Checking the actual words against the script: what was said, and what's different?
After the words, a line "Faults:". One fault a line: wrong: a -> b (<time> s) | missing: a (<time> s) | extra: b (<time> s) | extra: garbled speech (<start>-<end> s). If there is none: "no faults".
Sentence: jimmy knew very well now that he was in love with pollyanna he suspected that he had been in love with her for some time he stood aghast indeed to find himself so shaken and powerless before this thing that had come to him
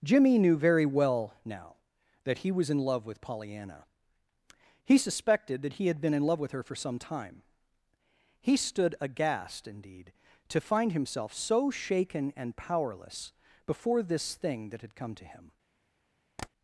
jimmy knew very well now that he was in love with pollyanna he suspected that he had been in love with her for some time he stood aghast indeed to find himself so shaken and powerless before this thing that had come to him
Faults:
no faults